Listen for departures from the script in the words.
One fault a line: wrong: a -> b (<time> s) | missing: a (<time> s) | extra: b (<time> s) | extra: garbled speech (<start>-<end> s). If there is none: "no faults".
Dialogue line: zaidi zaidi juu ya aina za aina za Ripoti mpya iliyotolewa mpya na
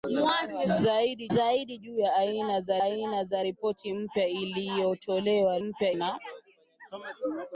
no faults